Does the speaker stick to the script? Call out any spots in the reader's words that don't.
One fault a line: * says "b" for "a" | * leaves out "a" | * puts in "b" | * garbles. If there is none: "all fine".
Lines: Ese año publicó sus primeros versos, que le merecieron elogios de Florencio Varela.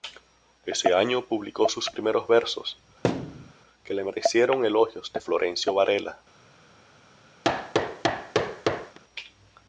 all fine